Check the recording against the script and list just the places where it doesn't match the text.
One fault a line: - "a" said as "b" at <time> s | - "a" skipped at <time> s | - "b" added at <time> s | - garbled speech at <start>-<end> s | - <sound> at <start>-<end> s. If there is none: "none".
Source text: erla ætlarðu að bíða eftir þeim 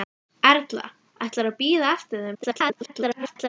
- garbled speech at 2.3-3.5 s